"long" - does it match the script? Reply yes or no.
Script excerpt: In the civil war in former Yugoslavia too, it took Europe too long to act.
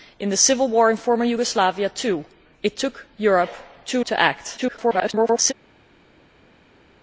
no